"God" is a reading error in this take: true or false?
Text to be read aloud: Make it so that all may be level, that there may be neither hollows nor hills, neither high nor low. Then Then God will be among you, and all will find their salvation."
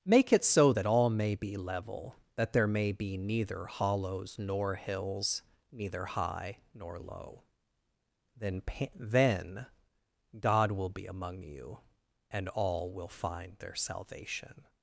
false